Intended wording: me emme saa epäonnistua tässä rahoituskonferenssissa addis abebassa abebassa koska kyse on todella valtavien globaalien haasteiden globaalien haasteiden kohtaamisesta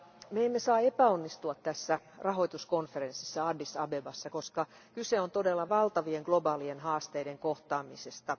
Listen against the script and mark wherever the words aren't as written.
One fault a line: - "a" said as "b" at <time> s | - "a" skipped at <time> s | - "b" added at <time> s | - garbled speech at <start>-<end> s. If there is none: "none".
- "abebassa" skipped at 4.3 s
- "globaalien haasteiden" skipped at 7.4 s